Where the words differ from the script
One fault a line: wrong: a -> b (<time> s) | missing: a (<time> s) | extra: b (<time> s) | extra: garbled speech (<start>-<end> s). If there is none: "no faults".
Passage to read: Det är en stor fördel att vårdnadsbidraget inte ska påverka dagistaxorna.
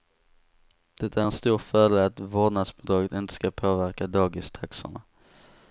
no faults